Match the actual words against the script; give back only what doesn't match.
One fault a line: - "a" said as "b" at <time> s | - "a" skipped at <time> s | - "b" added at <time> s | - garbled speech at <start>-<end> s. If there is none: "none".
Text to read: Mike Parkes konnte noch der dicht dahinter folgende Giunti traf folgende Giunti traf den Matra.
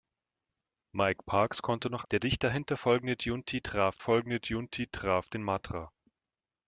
none